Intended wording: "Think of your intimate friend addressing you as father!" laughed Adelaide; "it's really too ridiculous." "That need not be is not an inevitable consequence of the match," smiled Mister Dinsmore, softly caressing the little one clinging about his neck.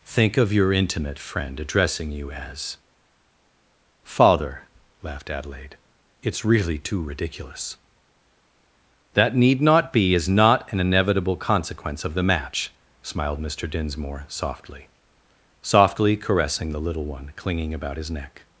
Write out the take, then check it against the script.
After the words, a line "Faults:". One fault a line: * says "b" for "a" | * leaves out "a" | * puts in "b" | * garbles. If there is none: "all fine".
"Think of your intimate friend addressing you as father!" laughed Adelaide; "it's really too ridiculous." "That need not be is not an inevitable consequence of the match," smiled Mister Dinsmore, softly softly caressing the little one clinging about his neck.
Faults:
* puts in "softly"